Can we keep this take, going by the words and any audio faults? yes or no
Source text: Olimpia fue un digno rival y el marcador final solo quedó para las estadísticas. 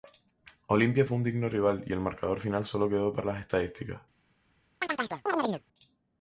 no